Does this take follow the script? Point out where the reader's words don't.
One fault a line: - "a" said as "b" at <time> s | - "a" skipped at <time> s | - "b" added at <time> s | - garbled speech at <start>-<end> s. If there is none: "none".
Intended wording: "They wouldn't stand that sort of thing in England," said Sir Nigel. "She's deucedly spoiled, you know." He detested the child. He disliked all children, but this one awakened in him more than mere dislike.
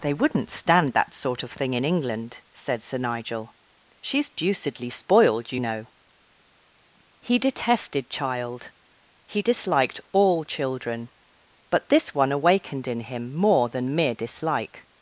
- "the" skipped at 8.1 s